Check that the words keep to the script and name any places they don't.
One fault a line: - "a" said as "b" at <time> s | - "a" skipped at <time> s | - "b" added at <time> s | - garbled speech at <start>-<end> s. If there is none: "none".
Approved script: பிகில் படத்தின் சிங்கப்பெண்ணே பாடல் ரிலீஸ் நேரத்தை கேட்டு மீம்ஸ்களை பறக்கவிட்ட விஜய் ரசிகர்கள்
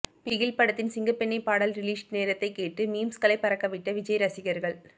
none